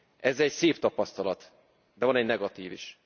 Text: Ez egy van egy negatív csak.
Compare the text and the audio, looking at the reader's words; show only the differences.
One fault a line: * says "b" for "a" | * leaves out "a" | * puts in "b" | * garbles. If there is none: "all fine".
* puts in "szép tapasztalat de"
* says "is" for "csak"